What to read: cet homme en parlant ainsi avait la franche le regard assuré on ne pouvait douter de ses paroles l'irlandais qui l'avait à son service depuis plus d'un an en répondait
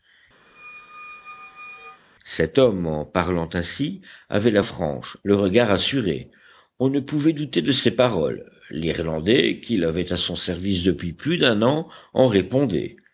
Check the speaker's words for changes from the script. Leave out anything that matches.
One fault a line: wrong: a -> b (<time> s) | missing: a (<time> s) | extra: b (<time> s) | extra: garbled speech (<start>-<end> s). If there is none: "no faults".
no faults